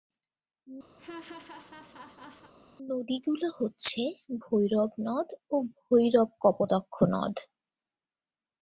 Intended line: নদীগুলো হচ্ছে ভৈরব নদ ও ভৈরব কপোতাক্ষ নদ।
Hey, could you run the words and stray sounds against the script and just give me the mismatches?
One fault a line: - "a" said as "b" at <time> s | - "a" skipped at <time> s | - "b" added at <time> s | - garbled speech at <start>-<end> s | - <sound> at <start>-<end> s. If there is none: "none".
- laugh at 1.0-2.5 s